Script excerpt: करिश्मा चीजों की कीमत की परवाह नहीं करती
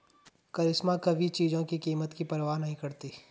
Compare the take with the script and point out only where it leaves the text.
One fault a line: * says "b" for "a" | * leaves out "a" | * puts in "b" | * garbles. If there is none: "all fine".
* puts in "कभी"